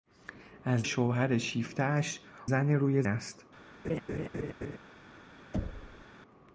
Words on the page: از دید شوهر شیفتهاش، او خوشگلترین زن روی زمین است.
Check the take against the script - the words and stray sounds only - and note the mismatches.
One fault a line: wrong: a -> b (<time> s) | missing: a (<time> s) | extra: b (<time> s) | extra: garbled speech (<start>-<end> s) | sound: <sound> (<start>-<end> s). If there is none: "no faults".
missing: دید (0.9 s)
missing: او خوشگلترین (2.2 s)
missing: زمین (3.0 s)
sound: laugh (3.8-4.8 s)
sound: thud (5.5-6.1 s)